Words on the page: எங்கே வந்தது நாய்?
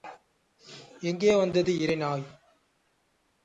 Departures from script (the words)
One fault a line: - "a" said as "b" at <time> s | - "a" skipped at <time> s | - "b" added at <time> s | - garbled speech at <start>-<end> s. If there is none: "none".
- "இரை" added at 1.8 s